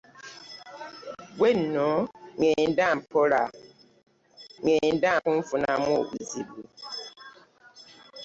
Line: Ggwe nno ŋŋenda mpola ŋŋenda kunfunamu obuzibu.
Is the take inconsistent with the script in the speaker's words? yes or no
no